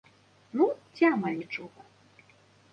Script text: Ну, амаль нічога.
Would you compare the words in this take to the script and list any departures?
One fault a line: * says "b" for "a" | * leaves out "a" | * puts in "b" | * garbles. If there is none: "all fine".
* puts in "ці"